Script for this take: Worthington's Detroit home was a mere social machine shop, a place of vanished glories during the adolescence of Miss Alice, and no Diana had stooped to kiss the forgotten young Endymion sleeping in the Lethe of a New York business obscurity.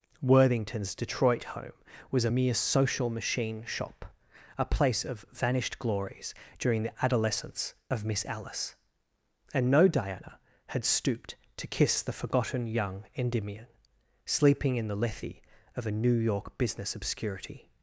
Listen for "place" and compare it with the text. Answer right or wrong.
right